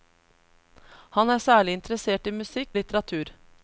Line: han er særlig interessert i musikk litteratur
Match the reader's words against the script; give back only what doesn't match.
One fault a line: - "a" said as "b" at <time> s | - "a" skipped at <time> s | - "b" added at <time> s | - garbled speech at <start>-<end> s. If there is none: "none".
none